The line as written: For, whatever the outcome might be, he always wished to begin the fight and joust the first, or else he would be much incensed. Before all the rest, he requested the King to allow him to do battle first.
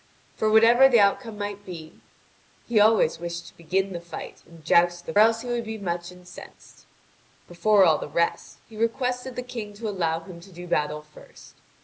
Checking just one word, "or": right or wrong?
wrong